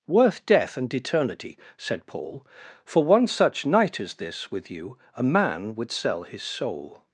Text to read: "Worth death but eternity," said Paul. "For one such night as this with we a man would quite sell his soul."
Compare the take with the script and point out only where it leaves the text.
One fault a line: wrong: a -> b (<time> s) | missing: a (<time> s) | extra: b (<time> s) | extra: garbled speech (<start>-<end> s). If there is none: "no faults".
wrong: but -> and (0.8 s)
wrong: we -> you (4.7 s)
missing: quite (5.9 s)